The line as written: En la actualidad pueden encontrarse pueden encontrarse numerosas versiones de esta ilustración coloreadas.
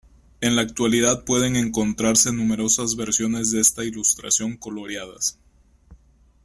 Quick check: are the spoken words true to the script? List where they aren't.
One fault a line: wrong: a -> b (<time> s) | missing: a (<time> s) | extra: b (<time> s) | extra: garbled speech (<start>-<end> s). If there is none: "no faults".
missing: pueden encontrarse (2.3 s)